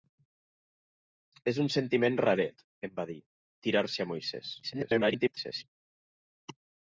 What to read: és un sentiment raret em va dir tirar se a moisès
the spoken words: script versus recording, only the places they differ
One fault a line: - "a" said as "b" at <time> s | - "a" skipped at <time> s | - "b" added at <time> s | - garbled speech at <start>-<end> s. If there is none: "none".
- garbled speech at 4.6-5.6 s